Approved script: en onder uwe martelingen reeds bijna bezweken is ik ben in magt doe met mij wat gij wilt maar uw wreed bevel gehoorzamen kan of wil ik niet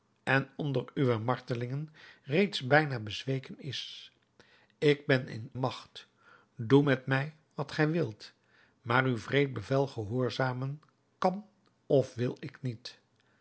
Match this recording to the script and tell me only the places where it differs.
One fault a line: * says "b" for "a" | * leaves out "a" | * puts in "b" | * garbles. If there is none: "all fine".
all fine